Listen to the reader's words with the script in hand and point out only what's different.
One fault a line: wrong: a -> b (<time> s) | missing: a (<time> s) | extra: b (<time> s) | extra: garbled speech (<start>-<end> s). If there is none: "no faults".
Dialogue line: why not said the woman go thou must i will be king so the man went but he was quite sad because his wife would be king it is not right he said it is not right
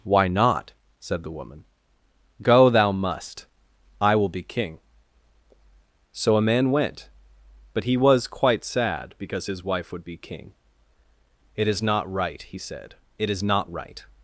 wrong: the -> a (6.4 s)